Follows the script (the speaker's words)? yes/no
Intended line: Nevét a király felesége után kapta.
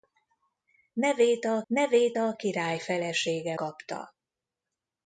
no